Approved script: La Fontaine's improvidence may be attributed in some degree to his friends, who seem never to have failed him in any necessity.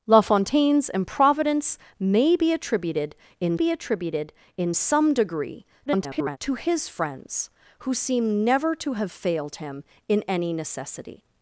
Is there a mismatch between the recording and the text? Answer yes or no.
yes